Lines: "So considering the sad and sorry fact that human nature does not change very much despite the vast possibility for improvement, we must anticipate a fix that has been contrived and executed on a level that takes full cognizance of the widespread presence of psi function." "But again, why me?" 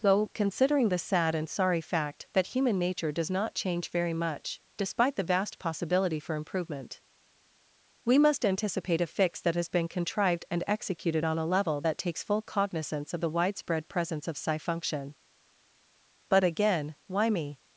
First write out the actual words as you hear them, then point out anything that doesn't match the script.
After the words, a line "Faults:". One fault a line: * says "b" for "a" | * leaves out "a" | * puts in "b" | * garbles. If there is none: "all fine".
"Though considering the sad and sorry fact that human nature does not change very much despite the vast possibility for improvement, we must anticipate a fix that has been contrived and executed on a level that takes full cognizance of the widespread presence of psi function." "But again, why me?"
Faults:
* says "Though" for "So"